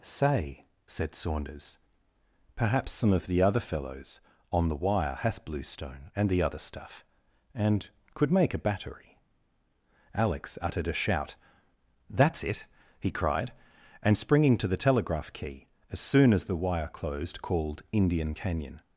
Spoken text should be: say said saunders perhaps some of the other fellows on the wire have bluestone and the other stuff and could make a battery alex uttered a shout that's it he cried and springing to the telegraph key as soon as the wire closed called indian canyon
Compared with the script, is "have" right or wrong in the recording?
wrong